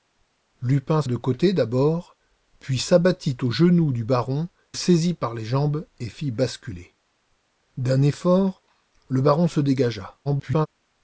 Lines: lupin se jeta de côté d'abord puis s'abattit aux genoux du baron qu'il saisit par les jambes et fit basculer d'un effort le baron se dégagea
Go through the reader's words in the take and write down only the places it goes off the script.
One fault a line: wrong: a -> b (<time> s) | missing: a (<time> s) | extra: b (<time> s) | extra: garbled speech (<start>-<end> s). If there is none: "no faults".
missing: se jeta (1.0 s)
missing: qu'il (4.5 s)
extra: garbled speech (10.2-10.7 s)